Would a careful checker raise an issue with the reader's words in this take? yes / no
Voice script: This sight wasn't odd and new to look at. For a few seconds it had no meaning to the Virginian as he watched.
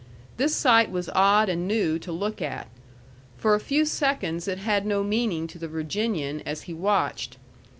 yes